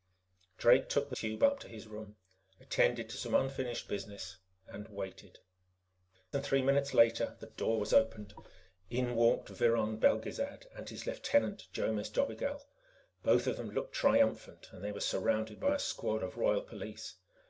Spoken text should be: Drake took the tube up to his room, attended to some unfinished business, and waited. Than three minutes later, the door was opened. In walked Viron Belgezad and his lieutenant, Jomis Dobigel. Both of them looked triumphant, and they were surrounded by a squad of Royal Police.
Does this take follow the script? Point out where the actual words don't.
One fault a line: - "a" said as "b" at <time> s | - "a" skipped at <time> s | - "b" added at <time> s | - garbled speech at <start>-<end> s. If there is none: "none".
none